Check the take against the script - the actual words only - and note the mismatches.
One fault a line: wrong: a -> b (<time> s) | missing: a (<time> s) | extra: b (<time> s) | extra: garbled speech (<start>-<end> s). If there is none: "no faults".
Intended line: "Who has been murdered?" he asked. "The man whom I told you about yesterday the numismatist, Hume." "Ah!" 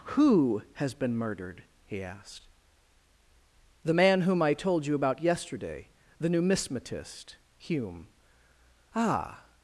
no faults